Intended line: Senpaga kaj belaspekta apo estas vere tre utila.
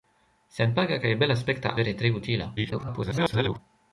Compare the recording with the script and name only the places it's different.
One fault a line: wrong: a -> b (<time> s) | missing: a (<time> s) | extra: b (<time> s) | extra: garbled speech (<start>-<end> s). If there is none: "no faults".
missing: apo estas (1.8 s)
extra: garbled speech (2.6-3.6 s)